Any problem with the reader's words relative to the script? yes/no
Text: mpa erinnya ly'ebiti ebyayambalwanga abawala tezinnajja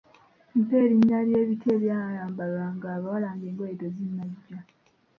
yes